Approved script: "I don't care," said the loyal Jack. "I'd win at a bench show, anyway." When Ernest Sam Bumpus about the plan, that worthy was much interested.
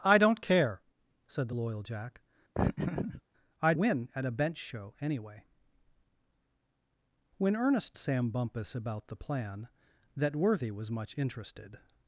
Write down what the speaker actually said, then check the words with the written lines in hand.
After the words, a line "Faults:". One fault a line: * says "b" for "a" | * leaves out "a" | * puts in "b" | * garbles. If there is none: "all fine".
"I don't care," said the loyal Jack. "I'd win at a bench show, anyway." When Ernest Sam Bumpus about the plan, that worthy was much interested.
Faults:
all fine